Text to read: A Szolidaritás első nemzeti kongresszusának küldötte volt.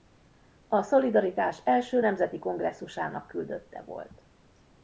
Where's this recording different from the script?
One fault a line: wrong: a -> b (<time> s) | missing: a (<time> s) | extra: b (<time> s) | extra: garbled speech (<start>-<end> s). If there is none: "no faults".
no faults